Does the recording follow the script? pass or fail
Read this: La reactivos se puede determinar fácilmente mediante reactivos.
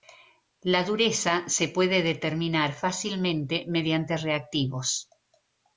fail